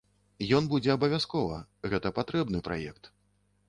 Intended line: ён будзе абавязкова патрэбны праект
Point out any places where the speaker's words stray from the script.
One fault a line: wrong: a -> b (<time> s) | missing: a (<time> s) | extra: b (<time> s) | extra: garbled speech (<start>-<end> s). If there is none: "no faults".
extra: гэта (1.9 s)